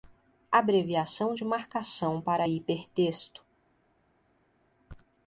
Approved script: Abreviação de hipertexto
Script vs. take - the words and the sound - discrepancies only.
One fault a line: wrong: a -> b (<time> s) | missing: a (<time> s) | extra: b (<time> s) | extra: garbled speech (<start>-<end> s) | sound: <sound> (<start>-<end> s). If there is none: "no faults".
extra: marcação para (1.4 s)